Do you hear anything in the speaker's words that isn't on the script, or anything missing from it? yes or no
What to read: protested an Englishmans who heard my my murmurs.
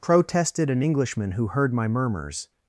yes